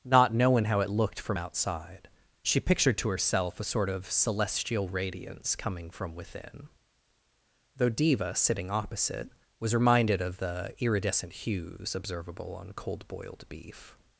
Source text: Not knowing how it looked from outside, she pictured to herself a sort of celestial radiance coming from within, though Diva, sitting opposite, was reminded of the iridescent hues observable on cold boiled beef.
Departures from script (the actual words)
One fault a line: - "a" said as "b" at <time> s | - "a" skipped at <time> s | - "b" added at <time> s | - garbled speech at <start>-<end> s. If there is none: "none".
none